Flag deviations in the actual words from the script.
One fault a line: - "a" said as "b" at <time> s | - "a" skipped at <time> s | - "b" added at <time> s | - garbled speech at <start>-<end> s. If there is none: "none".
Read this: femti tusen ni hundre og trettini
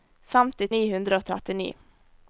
- "tusen" skipped at 0.7 s